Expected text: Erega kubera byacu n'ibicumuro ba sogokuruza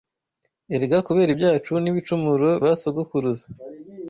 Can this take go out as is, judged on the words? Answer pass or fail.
pass